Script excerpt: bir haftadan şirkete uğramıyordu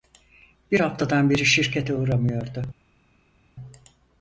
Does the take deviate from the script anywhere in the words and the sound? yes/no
yes